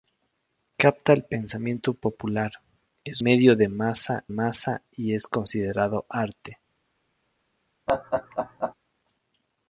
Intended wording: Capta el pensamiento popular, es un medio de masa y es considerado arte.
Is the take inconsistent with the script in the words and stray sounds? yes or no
yes